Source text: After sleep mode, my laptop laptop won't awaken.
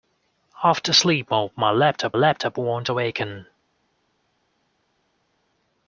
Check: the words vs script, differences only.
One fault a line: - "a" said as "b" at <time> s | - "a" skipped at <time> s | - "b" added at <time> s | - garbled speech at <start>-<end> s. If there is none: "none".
none